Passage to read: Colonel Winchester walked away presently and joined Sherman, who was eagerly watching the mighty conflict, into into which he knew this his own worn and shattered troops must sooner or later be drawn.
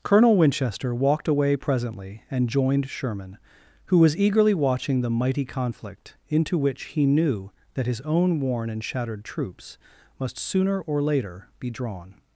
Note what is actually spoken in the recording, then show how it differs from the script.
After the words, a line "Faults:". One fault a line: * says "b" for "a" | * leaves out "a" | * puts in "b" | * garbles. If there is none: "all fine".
Colonel Winchester walked away presently and joined Sherman, who was eagerly watching the mighty conflict, into which he knew that his own worn and shattered troops must sooner or later be drawn.
Faults:
* leaves out "into"
* says "that" for "this"